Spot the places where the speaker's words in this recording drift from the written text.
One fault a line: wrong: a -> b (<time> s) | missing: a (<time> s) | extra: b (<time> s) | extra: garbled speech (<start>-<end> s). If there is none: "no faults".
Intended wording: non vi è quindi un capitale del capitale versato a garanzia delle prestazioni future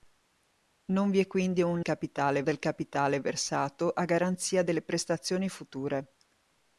no faults